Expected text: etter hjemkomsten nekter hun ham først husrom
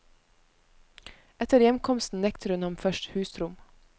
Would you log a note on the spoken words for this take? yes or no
no